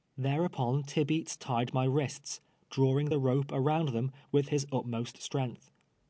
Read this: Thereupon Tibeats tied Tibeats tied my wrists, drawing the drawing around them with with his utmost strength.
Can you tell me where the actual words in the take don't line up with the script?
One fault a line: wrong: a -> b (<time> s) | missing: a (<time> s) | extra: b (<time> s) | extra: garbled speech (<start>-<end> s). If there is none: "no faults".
missing: Tibeats tied (1.8 s)
wrong: drawing -> rope (3.2 s)
missing: with (4.5 s)